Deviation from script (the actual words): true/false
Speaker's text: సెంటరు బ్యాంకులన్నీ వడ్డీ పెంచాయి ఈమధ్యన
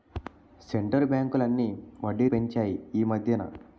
false